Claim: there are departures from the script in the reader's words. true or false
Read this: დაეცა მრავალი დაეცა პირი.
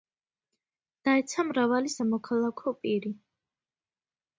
true